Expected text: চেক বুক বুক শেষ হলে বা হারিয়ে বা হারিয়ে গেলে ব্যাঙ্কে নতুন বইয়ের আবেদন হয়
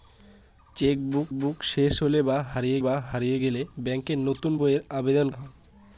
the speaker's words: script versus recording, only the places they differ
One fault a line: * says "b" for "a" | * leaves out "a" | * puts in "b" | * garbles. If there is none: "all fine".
all fine